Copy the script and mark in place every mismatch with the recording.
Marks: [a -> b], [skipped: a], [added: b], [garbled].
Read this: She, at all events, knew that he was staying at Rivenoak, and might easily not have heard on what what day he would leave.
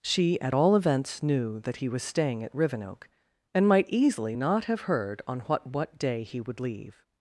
She, at all events, knew that he was staying at Rivenoak, and might easily not have heard on what what day he would leave.